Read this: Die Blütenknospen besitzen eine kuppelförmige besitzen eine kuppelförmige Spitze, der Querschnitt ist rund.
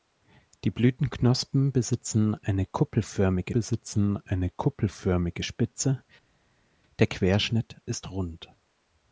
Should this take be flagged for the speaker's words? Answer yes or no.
no